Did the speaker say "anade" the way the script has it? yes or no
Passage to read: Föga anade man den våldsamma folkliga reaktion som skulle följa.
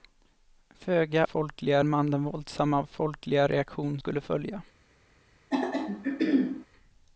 no